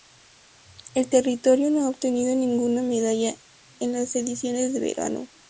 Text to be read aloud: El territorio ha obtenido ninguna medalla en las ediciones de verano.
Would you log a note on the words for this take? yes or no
yes